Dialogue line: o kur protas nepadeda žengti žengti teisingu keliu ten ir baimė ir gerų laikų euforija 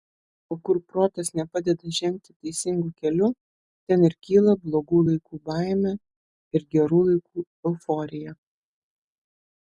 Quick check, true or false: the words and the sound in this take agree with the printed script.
false